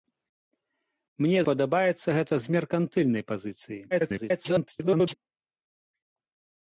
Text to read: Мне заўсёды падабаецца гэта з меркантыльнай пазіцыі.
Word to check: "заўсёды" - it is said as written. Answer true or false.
false